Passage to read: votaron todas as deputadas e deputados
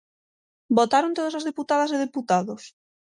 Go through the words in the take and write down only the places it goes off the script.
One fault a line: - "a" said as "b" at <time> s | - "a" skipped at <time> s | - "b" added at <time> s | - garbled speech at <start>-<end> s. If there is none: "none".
none